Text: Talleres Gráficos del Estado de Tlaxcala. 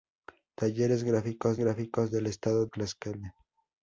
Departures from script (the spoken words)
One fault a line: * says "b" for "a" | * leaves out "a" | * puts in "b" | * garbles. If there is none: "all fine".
* puts in "Gráficos"
* leaves out "de"